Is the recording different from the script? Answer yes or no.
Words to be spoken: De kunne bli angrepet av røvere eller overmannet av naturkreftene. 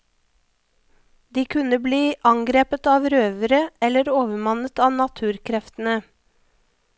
no